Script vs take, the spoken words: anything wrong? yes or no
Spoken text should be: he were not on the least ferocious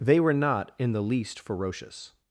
yes